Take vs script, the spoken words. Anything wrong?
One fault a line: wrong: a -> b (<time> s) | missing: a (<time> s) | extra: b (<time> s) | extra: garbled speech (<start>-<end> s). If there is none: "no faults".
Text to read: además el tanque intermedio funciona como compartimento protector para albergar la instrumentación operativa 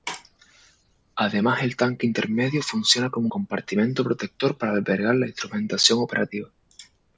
no faults